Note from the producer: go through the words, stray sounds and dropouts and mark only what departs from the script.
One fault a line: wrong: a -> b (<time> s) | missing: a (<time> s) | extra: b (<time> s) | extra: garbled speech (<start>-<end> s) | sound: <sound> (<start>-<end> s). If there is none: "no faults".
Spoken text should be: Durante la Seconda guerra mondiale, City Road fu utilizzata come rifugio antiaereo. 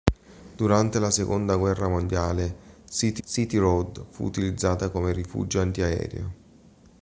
extra: City (3.2 s)